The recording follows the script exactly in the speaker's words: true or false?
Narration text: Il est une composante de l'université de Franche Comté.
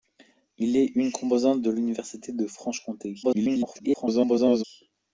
false